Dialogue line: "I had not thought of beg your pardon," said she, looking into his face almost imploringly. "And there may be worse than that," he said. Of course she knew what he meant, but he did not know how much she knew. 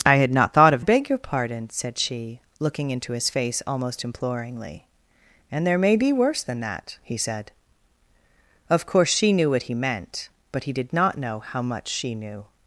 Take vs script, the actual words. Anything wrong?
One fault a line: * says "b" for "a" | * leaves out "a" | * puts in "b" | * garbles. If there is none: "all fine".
all fine